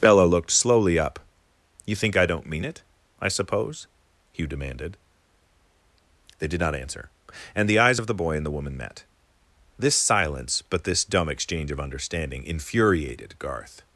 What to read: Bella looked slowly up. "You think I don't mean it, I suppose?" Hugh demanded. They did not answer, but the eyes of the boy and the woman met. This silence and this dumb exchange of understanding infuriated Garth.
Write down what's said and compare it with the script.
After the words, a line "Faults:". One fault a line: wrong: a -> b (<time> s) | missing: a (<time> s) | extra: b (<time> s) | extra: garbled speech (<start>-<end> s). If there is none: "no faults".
Bella looked slowly up. "You think I don't mean it, I suppose?" Hugh demanded. They did not answer, and the eyes of the boy and the woman met. This silence but this dumb exchange of understanding infuriated Garth.
Faults:
wrong: but -> and (7.5 s)
wrong: and -> but (10.6 s)